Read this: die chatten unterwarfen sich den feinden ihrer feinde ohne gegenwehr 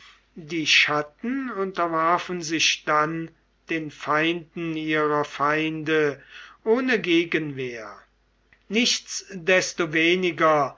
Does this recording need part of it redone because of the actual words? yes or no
yes